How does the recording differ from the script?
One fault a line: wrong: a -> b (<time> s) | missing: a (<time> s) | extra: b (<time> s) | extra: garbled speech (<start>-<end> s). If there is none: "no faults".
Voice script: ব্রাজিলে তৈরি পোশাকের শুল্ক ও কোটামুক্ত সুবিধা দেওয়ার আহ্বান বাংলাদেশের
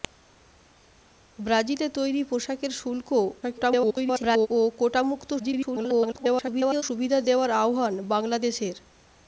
extra: garbled speech (3.4-4.5 s)
extra: garbled speech (5.4-6.8 s)